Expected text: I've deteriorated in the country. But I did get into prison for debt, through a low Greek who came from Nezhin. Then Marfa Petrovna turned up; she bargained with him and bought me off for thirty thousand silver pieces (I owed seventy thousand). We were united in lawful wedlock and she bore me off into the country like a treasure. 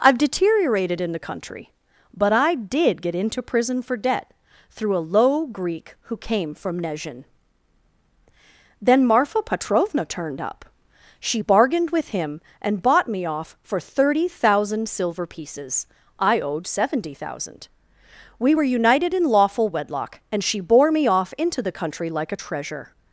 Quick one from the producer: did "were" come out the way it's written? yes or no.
yes